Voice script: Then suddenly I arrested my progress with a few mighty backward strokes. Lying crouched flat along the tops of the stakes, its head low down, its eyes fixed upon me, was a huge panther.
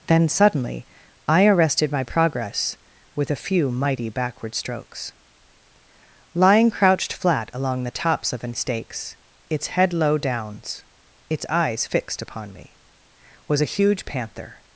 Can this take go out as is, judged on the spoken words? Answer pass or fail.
fail